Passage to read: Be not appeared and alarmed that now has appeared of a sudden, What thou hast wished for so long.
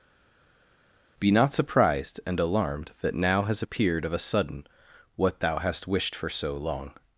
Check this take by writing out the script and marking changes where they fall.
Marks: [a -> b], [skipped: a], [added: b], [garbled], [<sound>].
Be not [appeared -> surprised] and alarmed that now has appeared of a sudden, What thou hast wished for so long.